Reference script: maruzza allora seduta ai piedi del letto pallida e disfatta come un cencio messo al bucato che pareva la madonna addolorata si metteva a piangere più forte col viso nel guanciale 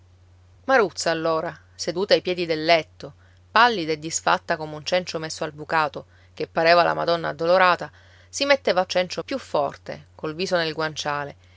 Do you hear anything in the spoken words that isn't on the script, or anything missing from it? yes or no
yes